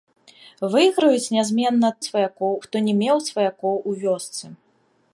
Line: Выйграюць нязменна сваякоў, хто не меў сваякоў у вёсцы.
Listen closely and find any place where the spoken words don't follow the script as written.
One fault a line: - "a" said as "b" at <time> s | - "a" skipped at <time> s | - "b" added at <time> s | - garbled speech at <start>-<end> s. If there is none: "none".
none